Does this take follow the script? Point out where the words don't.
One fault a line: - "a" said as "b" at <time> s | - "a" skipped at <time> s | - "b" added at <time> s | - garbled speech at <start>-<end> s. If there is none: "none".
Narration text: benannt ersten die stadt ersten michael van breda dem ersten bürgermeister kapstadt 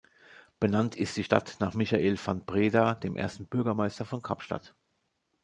- "ersten" said as "ist" at 0.9 s
- "ersten" said as "nach" at 1.6 s
- "von" added at 4.1 s